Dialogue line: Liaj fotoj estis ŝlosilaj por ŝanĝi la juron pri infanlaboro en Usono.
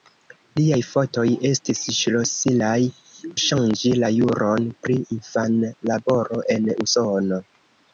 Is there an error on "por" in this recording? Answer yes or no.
yes